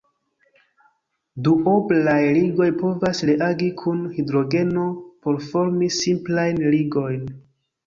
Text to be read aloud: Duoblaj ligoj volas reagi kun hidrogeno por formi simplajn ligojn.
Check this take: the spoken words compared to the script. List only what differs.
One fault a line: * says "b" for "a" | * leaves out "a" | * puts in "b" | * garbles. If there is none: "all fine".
* says "povas" for "volas"